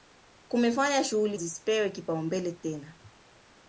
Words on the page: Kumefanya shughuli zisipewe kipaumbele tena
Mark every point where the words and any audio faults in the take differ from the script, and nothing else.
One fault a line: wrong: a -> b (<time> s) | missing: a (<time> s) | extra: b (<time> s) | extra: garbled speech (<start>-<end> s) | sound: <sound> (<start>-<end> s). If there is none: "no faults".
no faults